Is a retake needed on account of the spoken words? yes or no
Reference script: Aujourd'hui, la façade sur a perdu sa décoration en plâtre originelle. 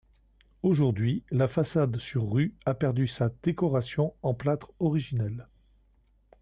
yes